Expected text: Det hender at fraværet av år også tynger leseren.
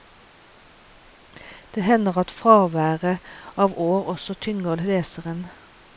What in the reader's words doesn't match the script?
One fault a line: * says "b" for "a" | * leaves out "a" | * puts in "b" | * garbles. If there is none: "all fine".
all fine